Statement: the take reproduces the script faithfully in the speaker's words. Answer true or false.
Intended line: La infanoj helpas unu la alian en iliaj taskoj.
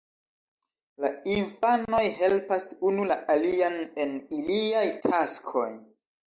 true